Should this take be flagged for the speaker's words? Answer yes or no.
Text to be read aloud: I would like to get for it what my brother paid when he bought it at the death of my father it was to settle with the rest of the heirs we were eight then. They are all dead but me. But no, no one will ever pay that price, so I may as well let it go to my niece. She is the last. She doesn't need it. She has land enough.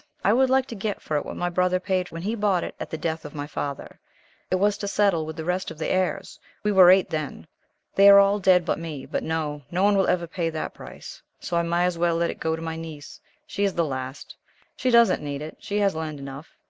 no